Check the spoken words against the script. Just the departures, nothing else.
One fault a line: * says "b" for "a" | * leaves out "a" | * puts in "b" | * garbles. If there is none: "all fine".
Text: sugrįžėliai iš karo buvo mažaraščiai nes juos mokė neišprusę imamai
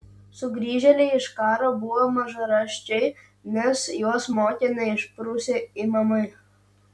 all fine